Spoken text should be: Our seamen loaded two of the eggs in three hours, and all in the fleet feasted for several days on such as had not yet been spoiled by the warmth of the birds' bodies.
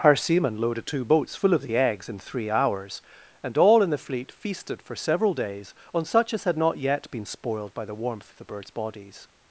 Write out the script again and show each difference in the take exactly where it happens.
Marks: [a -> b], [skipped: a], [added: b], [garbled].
Our seamen loaded two [added: boats full] of the eggs in three hours, and all in the fleet feasted for several days on such as had not yet been spoiled by the warmth of the birds' bodies.